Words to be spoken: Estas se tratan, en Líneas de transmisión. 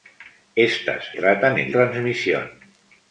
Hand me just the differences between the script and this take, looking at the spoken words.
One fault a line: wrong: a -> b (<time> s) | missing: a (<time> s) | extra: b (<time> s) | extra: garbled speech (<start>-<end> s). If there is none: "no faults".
missing: se (1.1 s)
missing: Líneas de (1.7 s)